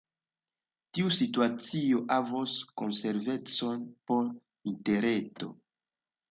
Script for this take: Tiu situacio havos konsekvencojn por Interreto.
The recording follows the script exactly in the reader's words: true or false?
true